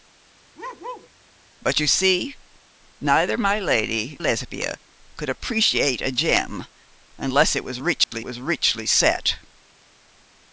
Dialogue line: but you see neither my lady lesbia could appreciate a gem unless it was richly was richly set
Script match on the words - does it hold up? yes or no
yes